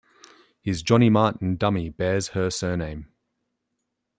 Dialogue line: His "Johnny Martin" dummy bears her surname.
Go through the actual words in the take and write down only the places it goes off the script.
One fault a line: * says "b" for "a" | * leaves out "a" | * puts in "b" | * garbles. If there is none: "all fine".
all fine